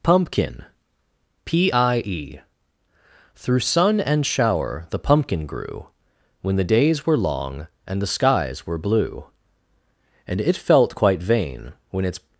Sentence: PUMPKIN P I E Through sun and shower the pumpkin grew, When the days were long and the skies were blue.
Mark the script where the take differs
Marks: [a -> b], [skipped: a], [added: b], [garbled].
PUMPKIN P I E Through sun and shower the pumpkin grew, When the days were long and the skies were blue. [added: And it felt quite vain when its]